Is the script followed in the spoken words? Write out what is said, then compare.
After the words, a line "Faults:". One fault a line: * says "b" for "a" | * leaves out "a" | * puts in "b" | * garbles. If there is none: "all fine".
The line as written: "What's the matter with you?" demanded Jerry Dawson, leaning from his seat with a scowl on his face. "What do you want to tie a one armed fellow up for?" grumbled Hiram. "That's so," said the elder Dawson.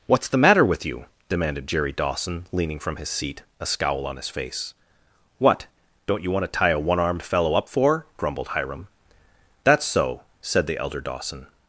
"What's the matter with you?" demanded Jerry Dawson, leaning from his seat a scowl on his face. "What don't you want to tie a one armed fellow up for?" grumbled Hiram. "That's so," said the elder Dawson.
Faults:
* leaves out "with"
* says "don't" for "do"